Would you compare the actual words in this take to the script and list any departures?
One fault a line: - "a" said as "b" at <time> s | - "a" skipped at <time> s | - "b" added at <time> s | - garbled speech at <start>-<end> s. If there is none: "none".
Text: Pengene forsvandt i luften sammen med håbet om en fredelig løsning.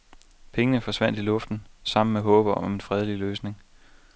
none